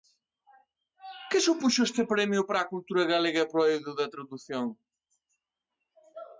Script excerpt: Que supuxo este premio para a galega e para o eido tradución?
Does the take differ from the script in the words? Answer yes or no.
yes